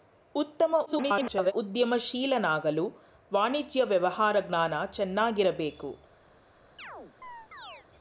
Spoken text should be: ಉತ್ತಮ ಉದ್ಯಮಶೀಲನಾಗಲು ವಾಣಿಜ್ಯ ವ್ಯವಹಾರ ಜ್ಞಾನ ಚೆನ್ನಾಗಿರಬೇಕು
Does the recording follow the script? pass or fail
fail